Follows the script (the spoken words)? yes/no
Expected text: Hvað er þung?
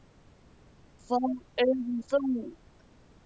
yes